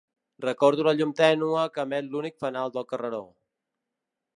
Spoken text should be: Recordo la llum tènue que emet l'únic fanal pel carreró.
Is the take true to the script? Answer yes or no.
no